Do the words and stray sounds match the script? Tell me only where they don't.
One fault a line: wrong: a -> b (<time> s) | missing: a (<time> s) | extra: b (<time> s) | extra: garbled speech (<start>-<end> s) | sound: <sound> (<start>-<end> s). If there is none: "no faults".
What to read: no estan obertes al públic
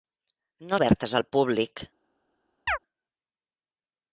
missing: estan (0.8 s)
sound: chirp (2.7-2.8 s)